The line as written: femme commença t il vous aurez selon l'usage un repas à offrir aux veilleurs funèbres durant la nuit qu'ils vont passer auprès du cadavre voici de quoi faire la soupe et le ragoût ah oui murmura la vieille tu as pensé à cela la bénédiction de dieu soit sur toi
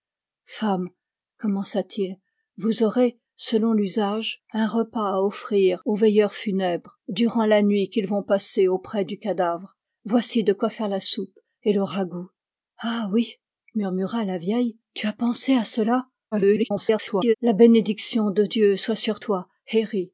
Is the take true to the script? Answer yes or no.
no